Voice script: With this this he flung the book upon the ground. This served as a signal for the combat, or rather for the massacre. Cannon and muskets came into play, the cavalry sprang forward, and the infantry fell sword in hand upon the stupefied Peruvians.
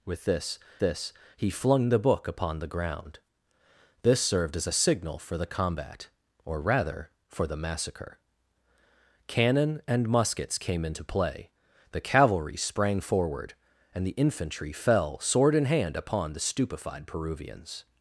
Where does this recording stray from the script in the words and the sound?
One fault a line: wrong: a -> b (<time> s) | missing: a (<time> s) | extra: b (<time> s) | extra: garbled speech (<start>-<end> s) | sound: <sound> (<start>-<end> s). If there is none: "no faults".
no faults